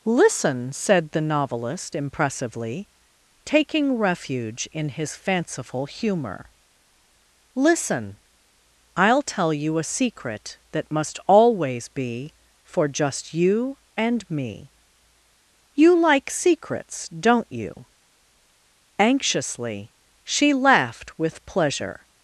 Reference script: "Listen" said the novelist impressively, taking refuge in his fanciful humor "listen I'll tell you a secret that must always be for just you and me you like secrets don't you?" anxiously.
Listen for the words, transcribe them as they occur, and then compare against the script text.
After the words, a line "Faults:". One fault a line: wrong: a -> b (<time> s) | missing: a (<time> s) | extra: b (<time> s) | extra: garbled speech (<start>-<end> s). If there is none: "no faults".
"Listen" said the novelist impressively, taking refuge in his fanciful humor "listen I'll tell you a secret that must always be for just you and me you like secrets don't you?" anxiously. She laughed with pleasure
Faults:
extra: She laughed with pleasure (20.2 s)